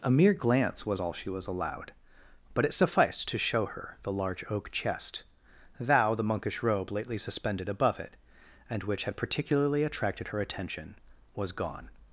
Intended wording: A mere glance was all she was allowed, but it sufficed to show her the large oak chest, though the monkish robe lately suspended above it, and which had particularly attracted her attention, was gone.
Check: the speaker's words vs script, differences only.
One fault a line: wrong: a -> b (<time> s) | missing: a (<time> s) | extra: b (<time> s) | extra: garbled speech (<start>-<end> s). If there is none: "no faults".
wrong: though -> thou (5.8 s)